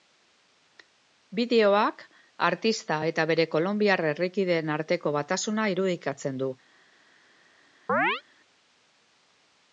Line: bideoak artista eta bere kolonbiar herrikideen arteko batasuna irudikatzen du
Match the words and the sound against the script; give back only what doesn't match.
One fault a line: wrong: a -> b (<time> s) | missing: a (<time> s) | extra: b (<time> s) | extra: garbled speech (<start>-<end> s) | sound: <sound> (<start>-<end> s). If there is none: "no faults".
sound: chirp (7.9-8.2 s)